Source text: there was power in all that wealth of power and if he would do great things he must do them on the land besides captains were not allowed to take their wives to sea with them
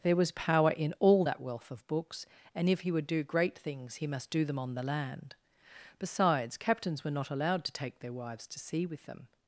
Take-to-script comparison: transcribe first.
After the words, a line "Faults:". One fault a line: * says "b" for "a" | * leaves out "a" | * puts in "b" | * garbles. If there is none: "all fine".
there was power in all that wealth of books and if he would do great things he must do them on the land besides captains were not allowed to take their wives to sea with them
Faults:
* says "books" for "power"